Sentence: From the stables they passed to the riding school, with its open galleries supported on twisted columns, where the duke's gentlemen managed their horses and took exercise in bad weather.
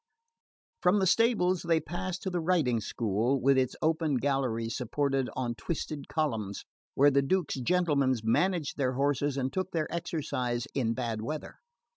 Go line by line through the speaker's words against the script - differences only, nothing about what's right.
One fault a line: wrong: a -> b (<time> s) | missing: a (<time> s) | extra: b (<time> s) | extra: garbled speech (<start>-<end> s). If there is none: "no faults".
extra: their (9.7 s)